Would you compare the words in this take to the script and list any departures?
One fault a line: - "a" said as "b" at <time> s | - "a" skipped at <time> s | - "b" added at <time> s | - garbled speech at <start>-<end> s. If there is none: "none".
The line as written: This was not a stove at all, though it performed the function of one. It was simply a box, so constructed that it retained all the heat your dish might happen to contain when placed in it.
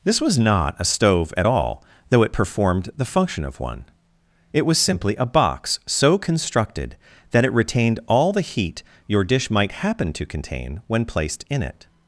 none